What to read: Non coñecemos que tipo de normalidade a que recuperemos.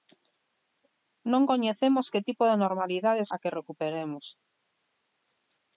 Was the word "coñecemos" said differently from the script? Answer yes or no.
no